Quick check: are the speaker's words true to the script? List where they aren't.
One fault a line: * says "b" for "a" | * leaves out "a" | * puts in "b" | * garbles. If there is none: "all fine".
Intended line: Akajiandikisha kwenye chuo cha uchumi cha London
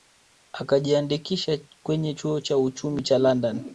all fine